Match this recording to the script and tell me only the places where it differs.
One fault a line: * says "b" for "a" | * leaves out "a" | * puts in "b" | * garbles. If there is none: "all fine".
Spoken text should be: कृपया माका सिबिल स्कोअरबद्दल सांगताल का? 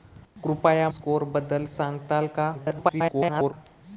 * leaves out "माका सिबिल"
* garbles